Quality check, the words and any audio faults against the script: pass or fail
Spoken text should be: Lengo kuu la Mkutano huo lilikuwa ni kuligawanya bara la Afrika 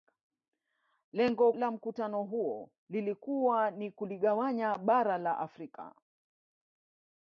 fail